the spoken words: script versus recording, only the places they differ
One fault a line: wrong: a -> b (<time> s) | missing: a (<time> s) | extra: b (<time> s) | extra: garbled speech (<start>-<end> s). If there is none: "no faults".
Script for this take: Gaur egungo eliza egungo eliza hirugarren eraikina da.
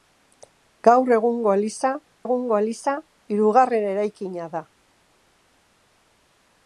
no faults